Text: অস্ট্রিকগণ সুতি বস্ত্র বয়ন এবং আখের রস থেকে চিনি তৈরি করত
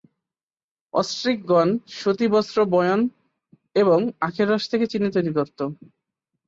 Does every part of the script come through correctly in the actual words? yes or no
yes